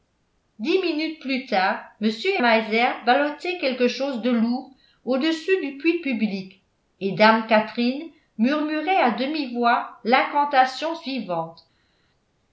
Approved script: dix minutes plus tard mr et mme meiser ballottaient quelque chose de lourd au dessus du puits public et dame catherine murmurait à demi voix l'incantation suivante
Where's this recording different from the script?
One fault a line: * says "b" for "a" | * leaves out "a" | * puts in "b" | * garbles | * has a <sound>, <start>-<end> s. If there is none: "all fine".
* leaves out "mme"